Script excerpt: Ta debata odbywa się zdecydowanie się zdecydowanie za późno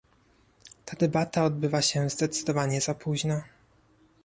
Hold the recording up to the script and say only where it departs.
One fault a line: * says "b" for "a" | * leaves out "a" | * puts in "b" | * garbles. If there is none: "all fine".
* leaves out "się zdecydowanie"